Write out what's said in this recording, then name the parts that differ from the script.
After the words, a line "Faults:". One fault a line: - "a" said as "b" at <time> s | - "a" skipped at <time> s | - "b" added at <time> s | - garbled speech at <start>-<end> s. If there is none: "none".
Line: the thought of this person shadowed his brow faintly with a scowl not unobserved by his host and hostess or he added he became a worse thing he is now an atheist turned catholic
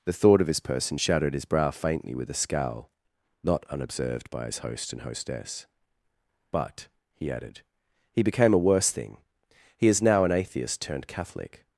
the thought of this person shadowed his brow faintly with a scowl not unobserved by his host and hostess but he added he became a worse thing he is now an atheist turned catholic
Faults:
- "or" said as "but" at 6.5 s